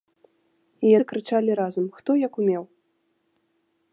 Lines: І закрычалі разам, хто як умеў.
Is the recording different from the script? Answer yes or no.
no